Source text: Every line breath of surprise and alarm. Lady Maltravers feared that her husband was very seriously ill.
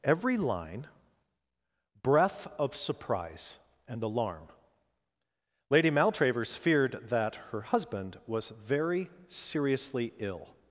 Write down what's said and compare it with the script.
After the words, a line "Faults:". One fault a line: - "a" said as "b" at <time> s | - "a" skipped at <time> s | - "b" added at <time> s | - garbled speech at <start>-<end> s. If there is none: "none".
Every line breath of surprise and alarm. Lady Maltravers feared that her husband was very seriously ill.
Faults:
none